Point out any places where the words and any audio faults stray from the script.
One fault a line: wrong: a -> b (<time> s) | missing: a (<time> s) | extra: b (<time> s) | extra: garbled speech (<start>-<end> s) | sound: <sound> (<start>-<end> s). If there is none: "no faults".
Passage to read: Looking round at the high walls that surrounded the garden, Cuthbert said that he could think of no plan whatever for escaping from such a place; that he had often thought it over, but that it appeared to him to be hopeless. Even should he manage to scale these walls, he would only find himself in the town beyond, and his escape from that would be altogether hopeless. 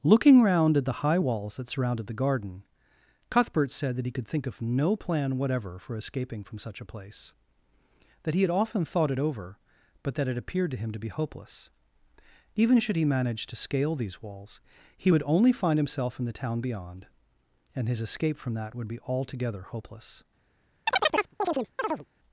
sound: chirp (20.9-22.1 s)